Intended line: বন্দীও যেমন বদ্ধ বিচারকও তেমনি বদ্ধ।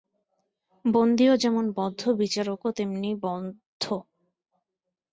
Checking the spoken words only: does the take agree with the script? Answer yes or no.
yes